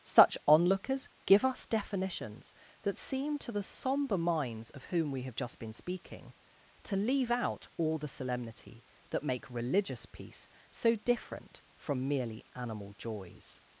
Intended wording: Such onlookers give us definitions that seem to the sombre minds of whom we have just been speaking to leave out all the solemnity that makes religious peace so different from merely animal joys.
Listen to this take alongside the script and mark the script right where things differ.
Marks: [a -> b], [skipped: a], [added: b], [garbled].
Such onlookers give us definitions that seem to the sombre minds of whom we have just been speaking to leave out all the solemnity that [makes -> make] religious peace so different from merely animal joys.